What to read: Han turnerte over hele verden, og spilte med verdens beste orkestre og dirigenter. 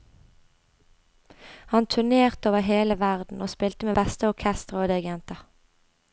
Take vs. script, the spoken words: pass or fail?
fail